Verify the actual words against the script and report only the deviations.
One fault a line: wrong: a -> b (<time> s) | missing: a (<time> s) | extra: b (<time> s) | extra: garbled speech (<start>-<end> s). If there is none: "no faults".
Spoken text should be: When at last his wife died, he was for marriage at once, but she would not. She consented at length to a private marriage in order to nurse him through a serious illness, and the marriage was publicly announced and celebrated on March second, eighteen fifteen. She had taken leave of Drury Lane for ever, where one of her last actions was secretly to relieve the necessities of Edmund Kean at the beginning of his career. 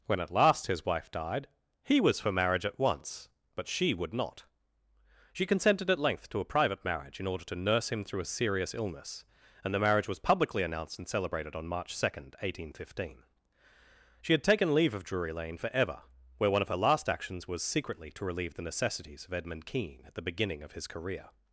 no faults